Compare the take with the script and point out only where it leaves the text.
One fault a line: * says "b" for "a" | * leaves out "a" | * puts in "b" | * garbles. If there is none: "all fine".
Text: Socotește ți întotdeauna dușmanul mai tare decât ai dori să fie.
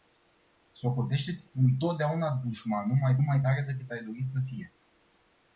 * puts in "mai"